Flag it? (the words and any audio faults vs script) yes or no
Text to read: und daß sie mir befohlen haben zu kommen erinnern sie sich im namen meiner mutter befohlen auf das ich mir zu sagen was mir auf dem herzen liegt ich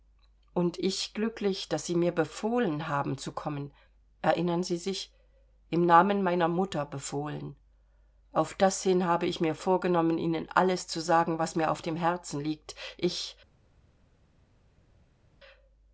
yes